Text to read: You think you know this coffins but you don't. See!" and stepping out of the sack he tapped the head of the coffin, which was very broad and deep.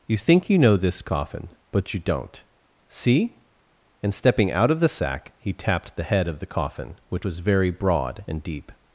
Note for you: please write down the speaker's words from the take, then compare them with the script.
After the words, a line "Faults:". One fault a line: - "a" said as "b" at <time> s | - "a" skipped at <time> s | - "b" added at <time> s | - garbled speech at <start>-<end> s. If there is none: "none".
You think you know this coffin but you don't. See!" and stepping out of the sack he tapped the head of the coffin, which was very broad and deep.
Faults:
- "coffins" said as "coffin" at 1.0 s